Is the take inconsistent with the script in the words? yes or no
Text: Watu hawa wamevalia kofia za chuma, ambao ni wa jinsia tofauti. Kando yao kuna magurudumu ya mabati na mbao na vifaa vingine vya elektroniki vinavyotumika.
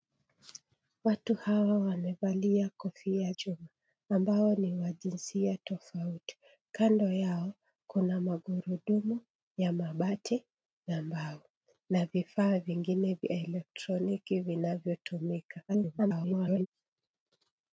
yes